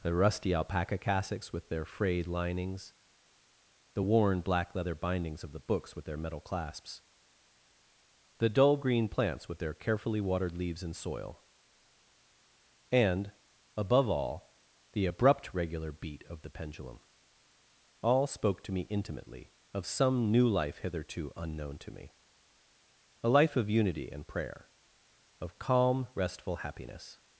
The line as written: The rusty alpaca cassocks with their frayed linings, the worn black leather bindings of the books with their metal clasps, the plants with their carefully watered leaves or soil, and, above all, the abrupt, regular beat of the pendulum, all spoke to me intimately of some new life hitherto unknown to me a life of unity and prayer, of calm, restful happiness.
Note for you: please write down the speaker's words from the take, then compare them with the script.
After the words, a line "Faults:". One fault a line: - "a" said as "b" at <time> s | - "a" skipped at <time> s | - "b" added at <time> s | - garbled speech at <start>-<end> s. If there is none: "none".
The rusty alpaca cassocks with their frayed linings, the worn black leather bindings of the books with their metal clasps, the dull green plants with their carefully watered leaves and soil, and, above all, the abrupt, regular beat of the pendulum, all spoke to me intimately of some new life hitherto unknown to me a life of unity and prayer, of calm, restful happiness.
Faults:
- "dull green" added at 8.5 s
- "or" said as "and" at 10.8 s